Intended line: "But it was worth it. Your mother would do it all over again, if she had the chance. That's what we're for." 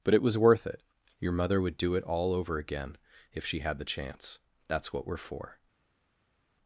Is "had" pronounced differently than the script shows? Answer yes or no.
no